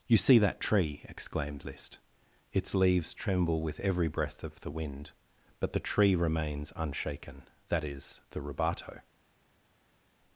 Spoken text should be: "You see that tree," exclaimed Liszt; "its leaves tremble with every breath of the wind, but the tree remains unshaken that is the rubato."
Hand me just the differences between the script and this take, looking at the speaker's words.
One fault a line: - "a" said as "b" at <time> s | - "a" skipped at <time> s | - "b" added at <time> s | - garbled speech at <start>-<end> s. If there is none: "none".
none